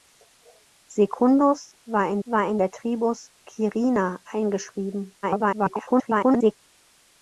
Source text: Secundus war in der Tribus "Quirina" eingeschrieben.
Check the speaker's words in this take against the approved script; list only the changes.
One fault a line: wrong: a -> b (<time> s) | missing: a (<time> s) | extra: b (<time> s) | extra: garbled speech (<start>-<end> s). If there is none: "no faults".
extra: war in (2.2 s)
extra: garbled speech (5.2-6.5 s)